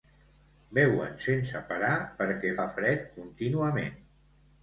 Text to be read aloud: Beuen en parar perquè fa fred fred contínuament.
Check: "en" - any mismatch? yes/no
yes